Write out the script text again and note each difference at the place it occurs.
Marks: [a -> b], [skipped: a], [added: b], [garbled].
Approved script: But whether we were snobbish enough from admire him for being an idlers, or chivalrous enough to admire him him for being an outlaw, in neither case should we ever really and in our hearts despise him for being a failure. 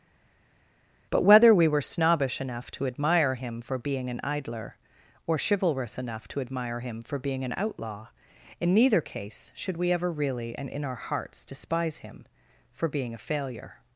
But whether we were snobbish enough [from -> to] admire him for being an [idlers, -> idler] or chivalrous enough to admire him [skipped: him] for being an outlaw, in neither case should we ever really and in our hearts despise him for being a failure.